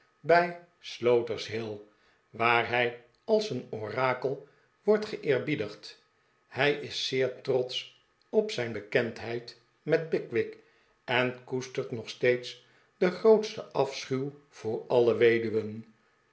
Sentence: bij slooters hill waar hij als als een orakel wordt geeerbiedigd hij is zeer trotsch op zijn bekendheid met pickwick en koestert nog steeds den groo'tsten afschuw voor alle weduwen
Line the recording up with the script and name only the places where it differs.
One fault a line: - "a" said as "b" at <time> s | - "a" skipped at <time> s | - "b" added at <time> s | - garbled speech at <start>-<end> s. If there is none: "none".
- "als" skipped at 3.5 s